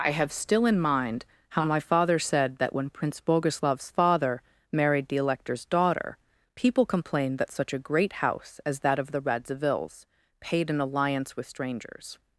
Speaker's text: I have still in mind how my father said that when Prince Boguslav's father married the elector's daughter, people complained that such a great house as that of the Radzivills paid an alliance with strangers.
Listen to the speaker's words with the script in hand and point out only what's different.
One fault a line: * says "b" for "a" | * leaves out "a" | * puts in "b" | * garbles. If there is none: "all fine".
all fine